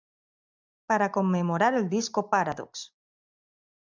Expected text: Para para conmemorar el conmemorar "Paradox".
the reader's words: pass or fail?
fail